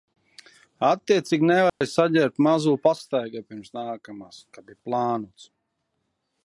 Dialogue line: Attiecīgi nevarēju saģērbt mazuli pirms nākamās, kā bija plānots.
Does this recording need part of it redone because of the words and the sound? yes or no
yes